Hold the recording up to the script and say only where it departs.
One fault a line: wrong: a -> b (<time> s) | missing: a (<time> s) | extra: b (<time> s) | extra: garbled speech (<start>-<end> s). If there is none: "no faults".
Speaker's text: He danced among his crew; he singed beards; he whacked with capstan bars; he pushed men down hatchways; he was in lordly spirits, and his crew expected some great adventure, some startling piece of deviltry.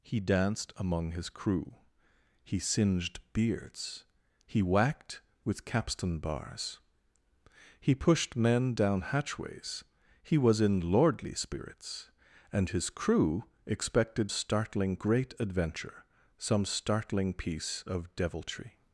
wrong: some -> startling (14.3 s)